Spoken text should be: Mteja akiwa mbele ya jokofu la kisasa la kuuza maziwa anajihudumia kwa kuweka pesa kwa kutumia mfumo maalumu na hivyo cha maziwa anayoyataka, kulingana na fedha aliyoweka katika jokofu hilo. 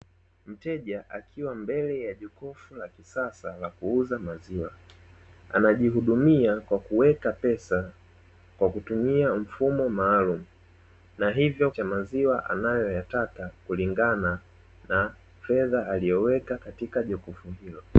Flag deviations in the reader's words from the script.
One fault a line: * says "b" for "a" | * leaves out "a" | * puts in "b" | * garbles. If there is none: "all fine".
all fine